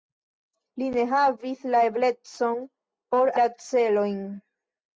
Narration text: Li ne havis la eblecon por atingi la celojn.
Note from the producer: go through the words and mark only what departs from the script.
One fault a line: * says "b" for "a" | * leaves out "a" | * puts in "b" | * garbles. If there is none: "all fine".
* leaves out "atingi"